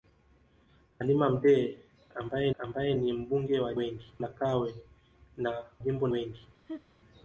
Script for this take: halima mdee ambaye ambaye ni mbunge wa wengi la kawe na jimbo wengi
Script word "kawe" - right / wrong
right